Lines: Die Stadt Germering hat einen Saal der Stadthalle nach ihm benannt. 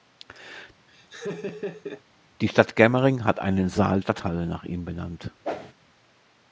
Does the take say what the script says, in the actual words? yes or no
no